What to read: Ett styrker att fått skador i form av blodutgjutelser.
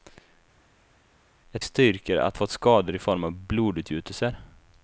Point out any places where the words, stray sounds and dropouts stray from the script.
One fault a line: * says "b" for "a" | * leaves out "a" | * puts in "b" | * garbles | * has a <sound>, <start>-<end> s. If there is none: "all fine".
all fine